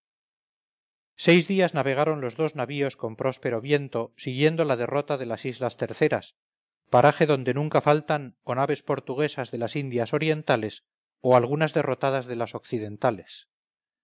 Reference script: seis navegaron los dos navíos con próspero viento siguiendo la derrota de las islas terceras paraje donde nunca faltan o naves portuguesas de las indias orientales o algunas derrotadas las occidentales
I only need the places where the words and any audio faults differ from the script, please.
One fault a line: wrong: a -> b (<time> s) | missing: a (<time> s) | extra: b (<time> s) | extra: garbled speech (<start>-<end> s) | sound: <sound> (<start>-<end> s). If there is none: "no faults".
extra: días (1.5 s)
extra: de (12.3 s)